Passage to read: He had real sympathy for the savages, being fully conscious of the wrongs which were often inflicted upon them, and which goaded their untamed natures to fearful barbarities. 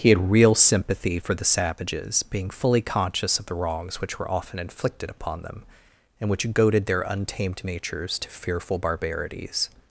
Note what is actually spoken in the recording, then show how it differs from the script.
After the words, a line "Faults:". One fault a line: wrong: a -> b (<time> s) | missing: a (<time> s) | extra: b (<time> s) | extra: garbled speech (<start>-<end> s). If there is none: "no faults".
He had real sympathy for the savages, being fully conscious of the wrongs which were often inflicted upon them, and which goaded their untamed natures to fearful barbarities.
Faults:
no faults